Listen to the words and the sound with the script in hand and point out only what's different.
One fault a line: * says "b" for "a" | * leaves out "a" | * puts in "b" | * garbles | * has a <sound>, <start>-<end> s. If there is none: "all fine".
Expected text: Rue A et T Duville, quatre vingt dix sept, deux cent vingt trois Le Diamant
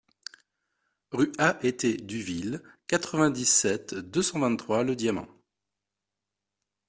all fine